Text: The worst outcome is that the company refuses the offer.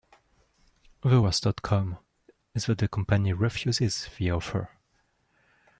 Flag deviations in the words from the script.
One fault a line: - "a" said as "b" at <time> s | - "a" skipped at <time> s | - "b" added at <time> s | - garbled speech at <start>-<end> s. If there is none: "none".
none